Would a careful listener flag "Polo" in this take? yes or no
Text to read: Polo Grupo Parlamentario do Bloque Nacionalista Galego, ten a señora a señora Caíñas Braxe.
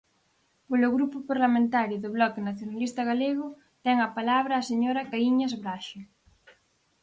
no